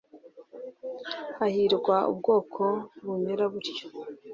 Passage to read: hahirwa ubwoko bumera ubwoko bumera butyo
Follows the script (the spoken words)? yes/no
no